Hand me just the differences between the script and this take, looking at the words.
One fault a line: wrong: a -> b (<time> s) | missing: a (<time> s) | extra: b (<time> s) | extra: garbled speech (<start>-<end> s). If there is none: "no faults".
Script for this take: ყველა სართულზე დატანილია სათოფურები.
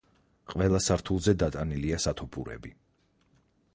no faults